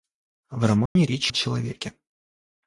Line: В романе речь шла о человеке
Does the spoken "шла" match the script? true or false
false